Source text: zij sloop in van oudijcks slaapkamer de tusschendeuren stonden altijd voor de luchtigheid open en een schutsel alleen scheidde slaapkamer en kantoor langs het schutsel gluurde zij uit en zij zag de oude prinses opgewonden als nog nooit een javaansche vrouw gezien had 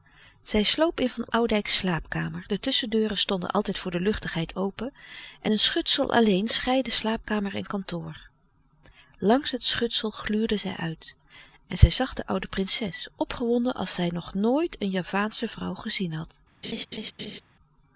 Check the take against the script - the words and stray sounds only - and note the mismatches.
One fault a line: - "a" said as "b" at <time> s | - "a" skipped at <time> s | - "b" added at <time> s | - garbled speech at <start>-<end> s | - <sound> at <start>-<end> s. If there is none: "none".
- "zij" added at 13.9 s
- laugh at 16.6-17.4 s